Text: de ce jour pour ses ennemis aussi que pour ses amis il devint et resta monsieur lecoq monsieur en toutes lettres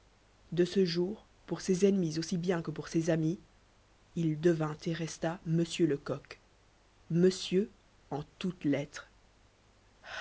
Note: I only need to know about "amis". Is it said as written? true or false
true